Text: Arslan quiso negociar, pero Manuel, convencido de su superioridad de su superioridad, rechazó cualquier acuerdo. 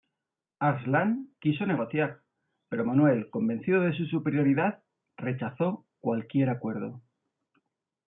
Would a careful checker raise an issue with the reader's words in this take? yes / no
yes